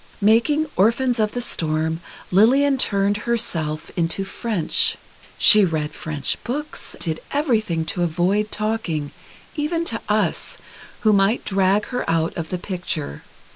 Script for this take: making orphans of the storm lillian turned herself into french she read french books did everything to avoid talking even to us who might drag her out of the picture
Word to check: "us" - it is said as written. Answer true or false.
true